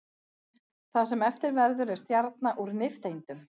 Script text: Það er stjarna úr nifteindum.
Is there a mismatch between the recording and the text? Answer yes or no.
yes